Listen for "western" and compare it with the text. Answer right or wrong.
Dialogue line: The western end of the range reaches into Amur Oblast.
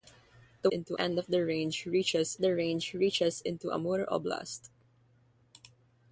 wrong